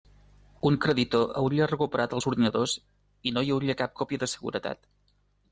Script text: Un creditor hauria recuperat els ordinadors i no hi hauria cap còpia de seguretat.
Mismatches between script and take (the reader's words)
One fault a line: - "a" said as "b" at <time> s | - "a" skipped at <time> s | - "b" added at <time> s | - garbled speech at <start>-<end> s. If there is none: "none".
none